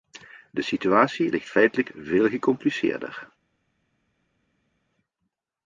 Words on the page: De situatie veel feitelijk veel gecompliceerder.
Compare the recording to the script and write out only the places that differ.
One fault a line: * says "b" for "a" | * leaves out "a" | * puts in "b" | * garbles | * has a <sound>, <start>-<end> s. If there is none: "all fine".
* says "ligt" for "veel"